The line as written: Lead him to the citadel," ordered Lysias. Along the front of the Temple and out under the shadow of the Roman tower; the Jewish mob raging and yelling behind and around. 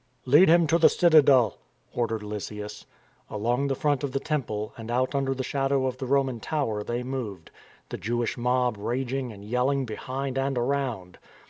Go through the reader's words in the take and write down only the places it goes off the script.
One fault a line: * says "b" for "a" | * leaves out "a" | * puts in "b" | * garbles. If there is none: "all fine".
* puts in "they moved"